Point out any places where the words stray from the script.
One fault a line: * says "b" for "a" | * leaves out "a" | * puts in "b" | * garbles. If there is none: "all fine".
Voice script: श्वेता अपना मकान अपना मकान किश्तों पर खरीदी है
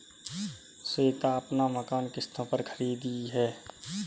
* leaves out "अपना मकान"